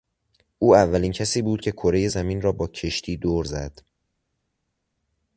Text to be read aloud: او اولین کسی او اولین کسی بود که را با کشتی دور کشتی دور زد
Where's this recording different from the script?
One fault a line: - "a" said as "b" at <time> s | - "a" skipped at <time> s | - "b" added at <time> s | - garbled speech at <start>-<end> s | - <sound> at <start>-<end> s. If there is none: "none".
- "او اولین کسی بود که" said as "بود که کرهی زمین" at 1.4 s
- "کشتی دور" skipped at 3.4 s